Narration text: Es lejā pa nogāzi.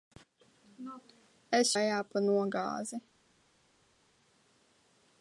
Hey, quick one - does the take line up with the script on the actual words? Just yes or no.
yes